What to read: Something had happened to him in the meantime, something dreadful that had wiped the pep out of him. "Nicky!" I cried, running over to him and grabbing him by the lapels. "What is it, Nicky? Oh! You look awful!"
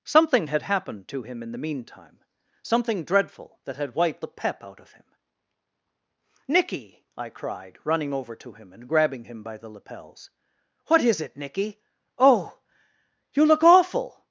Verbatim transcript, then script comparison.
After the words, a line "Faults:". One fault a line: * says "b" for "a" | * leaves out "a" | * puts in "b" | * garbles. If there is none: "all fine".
Something had happened to him in the meantime, something dreadful that had wiped the pep out of him. "Nicky!" I cried, running over to him and grabbing him by the lapels. "What is it, Nicky? Oh! You look awful!"
Faults:
all fine